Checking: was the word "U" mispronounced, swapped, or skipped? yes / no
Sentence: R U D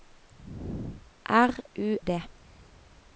no